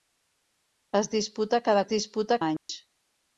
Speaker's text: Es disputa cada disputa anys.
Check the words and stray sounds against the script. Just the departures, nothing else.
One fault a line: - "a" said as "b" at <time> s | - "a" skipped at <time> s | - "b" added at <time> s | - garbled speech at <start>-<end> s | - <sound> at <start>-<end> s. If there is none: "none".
- dropout at 2.6-2.7 s